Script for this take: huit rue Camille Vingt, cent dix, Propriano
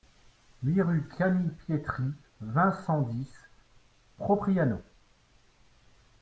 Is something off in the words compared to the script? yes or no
yes